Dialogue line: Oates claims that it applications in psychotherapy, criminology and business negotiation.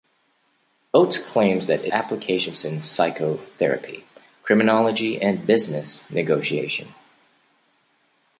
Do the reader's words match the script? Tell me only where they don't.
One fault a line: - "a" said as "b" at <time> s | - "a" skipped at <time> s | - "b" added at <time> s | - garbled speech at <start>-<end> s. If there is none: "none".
none